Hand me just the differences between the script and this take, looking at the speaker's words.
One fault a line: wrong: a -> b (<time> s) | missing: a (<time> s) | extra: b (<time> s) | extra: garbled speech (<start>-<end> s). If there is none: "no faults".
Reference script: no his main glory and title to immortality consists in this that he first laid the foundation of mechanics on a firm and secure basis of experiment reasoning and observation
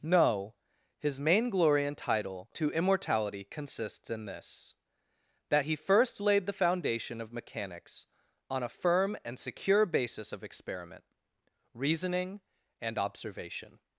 no faults